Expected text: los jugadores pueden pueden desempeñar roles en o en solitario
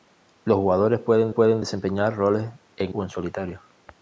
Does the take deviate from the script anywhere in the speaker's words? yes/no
no